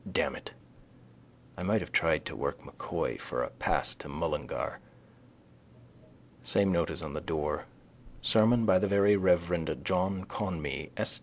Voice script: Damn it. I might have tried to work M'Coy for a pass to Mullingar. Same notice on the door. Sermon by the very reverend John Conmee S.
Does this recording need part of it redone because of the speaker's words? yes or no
no